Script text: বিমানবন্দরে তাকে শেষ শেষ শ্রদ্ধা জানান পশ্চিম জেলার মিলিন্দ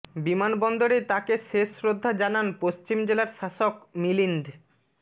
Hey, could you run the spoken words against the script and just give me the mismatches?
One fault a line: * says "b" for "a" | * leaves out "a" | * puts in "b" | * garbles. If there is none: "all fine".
* leaves out "শেষ"
* puts in "শাসক"